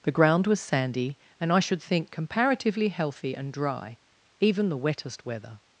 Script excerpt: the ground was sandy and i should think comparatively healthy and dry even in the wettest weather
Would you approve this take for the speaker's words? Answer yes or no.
no